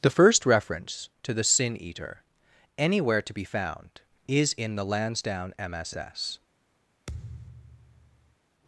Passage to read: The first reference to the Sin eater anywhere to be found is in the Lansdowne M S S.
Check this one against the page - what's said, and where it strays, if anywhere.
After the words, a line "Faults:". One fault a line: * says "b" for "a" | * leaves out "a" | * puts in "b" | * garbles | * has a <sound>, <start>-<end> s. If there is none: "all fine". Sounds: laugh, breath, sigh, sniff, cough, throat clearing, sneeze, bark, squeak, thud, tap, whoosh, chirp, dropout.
The first reference to the Sin eater anywhere to be found is in the Lansdowne M S S.
Faults:
* has a thud, 7.1-8.4 s